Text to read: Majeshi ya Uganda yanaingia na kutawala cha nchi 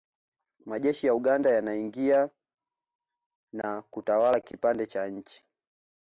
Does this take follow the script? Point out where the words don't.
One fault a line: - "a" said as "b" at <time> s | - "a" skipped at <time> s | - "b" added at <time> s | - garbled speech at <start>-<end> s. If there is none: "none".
- "kipande" added at 4.4 s